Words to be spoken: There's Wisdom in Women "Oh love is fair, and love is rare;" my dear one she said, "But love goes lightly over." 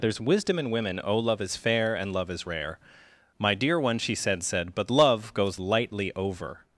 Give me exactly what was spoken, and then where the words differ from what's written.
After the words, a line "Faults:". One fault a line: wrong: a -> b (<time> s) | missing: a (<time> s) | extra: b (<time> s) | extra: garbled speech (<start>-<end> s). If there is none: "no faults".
There's Wisdom in Women "Oh love is fair, and love is rare;" my dear one she said said, "But love goes lightly over."
Faults:
extra: said (4.4 s)